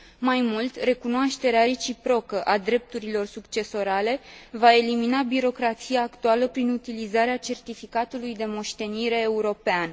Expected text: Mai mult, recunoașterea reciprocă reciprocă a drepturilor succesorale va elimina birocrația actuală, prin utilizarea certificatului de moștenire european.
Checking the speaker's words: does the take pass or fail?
fail